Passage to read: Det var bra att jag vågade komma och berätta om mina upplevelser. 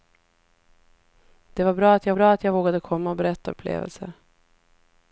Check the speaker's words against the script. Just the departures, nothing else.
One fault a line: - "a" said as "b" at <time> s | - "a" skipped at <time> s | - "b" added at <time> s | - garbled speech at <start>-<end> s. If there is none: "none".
- "bra att jag" added at 2.1 s
- "mina" skipped at 3.6 s